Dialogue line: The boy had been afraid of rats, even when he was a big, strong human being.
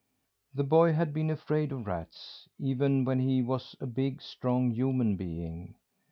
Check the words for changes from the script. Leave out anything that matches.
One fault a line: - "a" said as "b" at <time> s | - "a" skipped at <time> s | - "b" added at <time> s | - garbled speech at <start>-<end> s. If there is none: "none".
none